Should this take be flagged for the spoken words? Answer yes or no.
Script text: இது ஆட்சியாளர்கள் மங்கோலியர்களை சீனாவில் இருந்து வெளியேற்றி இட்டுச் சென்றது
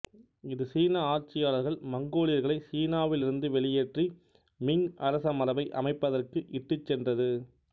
yes